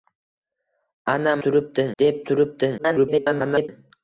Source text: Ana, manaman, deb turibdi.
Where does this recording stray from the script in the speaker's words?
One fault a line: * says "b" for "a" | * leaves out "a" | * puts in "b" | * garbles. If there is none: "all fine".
* says "turibdi" for "manaman"
* garbles